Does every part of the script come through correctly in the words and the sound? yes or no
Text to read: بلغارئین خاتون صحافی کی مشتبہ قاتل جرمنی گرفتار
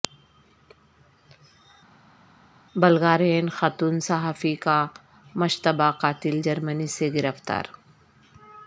no